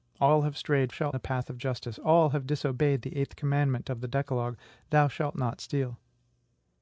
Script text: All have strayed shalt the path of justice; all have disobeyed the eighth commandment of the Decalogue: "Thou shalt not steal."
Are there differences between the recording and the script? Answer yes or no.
no